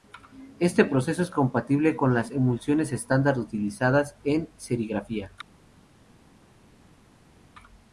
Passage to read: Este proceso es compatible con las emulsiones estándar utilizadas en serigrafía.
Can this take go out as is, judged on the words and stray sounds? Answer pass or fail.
pass